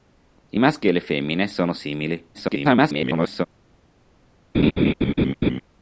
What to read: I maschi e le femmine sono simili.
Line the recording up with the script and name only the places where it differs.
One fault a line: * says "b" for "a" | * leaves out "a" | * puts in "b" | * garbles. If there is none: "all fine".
* garbles